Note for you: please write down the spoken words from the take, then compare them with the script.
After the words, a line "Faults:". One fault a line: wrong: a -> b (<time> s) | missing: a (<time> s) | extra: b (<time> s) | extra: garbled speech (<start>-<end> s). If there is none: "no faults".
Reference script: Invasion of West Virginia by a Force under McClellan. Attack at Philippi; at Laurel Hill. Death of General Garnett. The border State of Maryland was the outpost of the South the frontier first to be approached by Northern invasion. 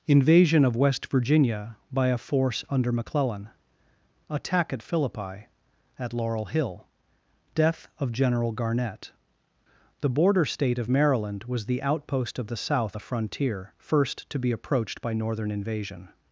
Invasion of West Virginia by a Force under McClellan. Attack at Philippi; at Laurel Hill. Death of General Garnett. The border State of Maryland was the outpost of the South the frontier first to be approached by Northern invasion.
Faults:
no faults